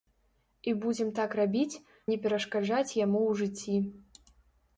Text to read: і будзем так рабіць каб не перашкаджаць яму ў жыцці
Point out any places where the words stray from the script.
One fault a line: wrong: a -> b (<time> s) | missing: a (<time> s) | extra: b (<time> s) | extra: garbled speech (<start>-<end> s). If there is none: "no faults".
missing: каб (1.8 s)